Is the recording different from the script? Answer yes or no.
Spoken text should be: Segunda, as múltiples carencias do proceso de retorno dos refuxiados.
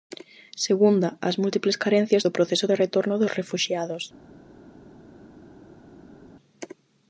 no